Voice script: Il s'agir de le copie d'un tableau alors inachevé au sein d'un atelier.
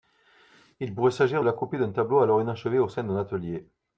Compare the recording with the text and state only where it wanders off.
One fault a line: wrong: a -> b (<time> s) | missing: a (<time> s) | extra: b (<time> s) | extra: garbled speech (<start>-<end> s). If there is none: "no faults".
extra: pourrait (0.9 s)
wrong: le -> la (1.4 s)